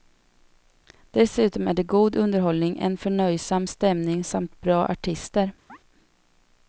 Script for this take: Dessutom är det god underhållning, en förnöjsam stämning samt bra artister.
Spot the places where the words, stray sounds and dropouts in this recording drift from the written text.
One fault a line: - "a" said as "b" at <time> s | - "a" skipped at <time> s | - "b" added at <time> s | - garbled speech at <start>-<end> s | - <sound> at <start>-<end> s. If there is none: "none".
- chirp at 5.7-5.8 s